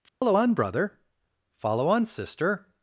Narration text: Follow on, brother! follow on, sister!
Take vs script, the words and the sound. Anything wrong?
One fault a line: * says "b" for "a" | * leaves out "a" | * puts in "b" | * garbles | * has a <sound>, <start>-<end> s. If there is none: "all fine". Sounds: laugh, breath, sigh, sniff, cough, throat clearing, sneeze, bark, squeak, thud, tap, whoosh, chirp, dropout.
* has a dropout, 0.1-0.2 s